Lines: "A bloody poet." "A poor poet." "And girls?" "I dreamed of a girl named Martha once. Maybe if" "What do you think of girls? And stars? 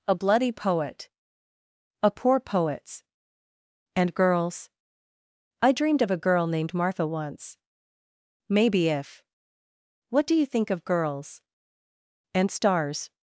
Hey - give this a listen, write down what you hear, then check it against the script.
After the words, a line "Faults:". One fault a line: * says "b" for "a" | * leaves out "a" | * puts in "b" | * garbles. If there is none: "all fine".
"A bloody poet." "A poor poets." "And girls?" "I dreamed of a girl named Martha once. Maybe if" "What do you think of girls? And stars?
Faults:
* says "poets" for "poet"